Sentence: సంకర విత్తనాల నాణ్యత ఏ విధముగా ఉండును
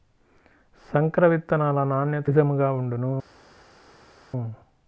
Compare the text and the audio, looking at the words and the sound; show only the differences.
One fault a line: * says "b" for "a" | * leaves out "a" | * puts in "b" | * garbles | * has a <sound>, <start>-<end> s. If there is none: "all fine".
* leaves out "ఏ"